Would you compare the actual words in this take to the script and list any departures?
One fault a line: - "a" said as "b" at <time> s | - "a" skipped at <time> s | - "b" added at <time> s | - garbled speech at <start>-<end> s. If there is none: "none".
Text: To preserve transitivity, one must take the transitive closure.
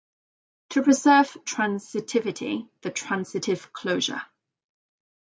- "one must take" skipped at 2.7 s